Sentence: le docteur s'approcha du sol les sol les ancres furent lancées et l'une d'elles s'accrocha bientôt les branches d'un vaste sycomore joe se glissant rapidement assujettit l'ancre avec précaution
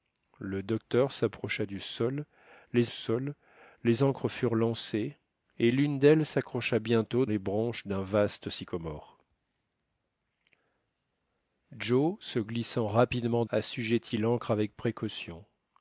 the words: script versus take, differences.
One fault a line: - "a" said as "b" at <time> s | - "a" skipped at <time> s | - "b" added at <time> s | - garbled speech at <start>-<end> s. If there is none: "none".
none